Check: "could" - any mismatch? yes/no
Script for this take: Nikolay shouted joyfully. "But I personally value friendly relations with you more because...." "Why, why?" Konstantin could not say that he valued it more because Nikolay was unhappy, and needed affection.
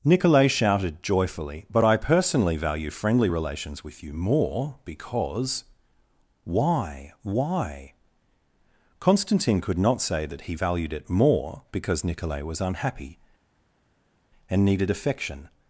no